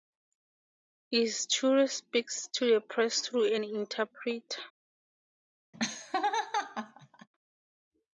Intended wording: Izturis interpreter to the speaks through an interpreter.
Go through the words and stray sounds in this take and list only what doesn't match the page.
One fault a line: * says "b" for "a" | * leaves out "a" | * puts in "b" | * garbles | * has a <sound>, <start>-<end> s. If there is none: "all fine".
* says "speaks" for "interpreter"
* says "press" for "speaks"
* has a laugh, 5.7-7.3 s